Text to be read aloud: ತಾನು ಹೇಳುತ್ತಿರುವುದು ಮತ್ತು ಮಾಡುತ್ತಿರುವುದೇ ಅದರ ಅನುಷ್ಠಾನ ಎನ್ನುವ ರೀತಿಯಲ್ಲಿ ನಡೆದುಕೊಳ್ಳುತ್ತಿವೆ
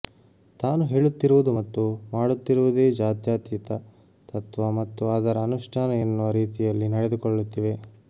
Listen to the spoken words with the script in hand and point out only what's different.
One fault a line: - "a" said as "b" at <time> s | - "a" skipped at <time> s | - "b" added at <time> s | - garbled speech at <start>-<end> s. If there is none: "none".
- "ಜಾತ್ಯತೀತ ತತ್ವ ಮತ್ತು" added at 2.9 s